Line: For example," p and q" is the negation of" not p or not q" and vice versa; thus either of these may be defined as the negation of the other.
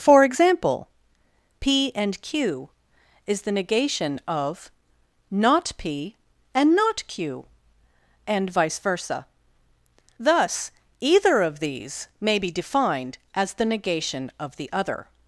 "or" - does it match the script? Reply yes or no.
no